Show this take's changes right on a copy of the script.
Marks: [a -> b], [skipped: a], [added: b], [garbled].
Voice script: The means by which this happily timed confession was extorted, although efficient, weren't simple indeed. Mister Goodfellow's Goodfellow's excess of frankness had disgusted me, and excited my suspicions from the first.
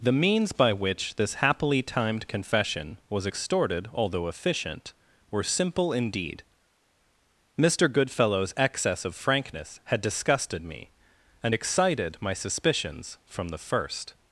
The means by which this happily timed confession was extorted, although efficient, [weren't -> were] simple indeed. Mister Goodfellow's [skipped: Goodfellow's] excess of frankness had disgusted me, and excited my suspicions from the first.